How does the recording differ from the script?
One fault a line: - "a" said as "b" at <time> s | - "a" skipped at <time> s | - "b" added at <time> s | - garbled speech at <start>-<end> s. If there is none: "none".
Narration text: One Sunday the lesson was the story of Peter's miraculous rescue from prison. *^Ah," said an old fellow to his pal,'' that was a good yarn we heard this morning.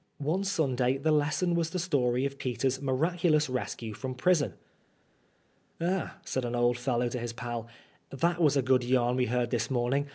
none